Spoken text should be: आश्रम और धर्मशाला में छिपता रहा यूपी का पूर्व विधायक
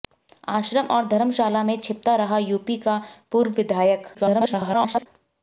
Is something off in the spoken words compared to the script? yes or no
yes